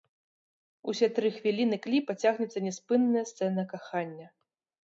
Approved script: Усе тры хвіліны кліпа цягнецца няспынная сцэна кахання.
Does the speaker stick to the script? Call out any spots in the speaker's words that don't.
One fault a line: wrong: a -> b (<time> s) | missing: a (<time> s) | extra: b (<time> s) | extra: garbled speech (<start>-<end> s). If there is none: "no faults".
no faults